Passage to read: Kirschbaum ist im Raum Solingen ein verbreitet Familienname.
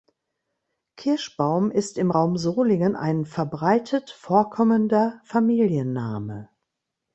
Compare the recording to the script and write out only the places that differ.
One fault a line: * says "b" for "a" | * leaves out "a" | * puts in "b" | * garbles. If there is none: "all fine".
* puts in "vorkommender"